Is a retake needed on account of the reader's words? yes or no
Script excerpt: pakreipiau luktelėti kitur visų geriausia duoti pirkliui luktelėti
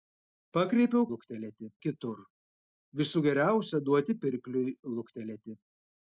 no